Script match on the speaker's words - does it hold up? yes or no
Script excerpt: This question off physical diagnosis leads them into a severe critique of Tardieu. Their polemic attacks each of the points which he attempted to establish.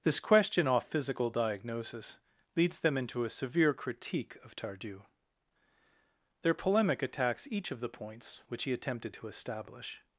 yes